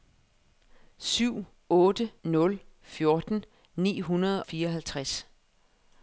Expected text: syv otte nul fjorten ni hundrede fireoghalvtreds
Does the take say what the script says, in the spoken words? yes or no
yes